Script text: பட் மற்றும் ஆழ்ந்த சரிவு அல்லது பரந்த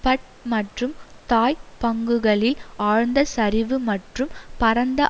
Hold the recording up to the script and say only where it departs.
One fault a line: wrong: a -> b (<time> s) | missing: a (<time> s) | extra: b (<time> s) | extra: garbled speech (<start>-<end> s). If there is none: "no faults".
extra: தாய் பங்குகளில் (1.3 s)
wrong: அல்லது -> மற்றும் (3.9 s)